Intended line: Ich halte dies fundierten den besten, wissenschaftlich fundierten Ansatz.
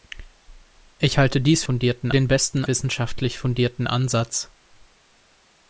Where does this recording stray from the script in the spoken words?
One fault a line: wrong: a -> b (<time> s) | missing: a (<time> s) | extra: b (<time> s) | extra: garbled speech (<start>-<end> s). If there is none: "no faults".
no faults